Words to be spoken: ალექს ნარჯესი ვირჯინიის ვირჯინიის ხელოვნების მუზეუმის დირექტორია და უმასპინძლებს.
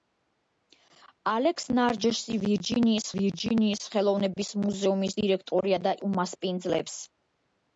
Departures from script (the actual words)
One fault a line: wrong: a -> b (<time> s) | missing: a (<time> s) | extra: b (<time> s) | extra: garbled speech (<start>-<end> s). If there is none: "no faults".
no faults